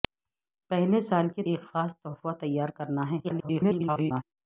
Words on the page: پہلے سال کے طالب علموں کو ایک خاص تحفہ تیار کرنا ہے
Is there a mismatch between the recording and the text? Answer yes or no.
yes